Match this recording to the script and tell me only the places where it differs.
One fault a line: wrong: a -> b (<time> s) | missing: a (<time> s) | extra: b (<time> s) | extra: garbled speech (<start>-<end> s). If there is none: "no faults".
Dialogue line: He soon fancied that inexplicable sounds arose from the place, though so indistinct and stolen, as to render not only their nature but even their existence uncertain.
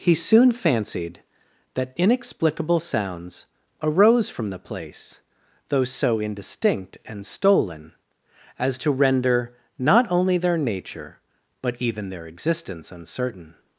no faults